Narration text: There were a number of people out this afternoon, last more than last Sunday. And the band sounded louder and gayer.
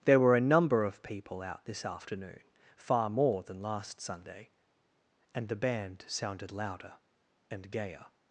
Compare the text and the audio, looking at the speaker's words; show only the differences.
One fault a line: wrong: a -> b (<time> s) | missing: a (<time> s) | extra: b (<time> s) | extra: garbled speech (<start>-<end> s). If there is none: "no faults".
wrong: last -> far (2.8 s)